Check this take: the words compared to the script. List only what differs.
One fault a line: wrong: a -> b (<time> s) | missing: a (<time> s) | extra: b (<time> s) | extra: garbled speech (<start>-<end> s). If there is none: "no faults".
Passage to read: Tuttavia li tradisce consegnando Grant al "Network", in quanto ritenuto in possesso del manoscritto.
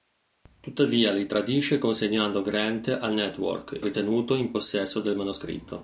missing: in quanto (3.8 s)